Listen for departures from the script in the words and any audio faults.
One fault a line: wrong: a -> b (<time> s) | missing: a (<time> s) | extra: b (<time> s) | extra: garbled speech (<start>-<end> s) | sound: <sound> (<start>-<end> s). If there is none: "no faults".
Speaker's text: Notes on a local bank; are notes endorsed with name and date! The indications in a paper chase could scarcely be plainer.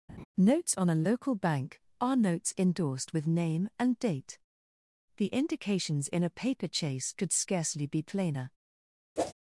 sound: laugh (0.1-0.3 s)
sound: whoosh (9.2-9.3 s)